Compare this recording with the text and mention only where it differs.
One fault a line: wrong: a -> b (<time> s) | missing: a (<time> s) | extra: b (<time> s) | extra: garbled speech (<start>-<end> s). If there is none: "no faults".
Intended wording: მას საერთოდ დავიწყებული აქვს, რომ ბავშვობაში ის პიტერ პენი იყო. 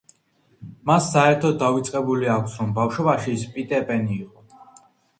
no faults